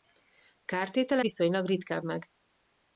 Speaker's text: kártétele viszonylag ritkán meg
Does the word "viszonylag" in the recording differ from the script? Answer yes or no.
no